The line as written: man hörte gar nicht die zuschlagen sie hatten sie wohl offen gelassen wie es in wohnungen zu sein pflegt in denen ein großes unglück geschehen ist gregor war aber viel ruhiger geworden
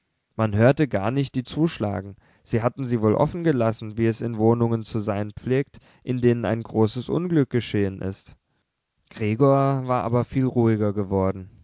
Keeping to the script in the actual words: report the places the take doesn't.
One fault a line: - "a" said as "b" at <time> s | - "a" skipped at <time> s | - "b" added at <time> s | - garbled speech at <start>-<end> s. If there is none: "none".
none